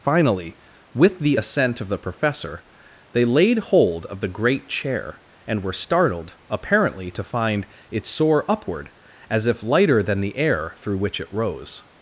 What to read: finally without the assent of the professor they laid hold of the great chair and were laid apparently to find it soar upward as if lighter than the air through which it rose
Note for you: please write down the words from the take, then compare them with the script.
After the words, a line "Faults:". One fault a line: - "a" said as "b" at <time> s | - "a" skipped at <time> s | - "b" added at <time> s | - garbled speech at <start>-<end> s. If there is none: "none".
finally with the assent of the professor they laid hold of the great chair and were startled apparently to find it soar upward as if lighter than the air through which it rose
Faults:
- "without" said as "with" at 0.9 s
- "laid" said as "startled" at 5.7 s